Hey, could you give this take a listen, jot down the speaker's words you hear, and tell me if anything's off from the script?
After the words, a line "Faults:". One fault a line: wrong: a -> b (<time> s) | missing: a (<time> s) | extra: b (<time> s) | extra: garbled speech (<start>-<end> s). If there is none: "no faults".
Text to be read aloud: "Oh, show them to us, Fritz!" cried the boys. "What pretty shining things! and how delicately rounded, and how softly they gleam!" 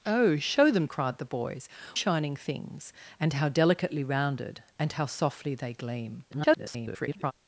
"Oh, show them!" cried the boys. "Shining things! and how delicately rounded, and how softly they gleam!" [garbled]
Faults:
missing: to us Fritz (0.9 s)
missing: What pretty (1.7 s)
extra: garbled speech (6.3-7.3 s)